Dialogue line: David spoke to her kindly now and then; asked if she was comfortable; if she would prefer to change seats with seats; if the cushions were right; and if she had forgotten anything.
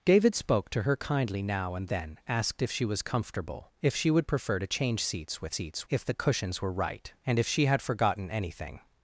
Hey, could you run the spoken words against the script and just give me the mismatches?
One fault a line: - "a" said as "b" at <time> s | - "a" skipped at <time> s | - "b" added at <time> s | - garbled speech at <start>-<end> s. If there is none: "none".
none